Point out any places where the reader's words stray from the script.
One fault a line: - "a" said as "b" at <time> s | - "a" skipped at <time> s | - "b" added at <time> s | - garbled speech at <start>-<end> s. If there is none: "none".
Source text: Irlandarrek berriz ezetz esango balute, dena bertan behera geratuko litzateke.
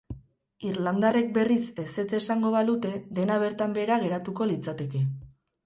none